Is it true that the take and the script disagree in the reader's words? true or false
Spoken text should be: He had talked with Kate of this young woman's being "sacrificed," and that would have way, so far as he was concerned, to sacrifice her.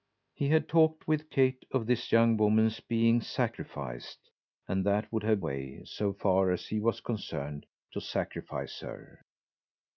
false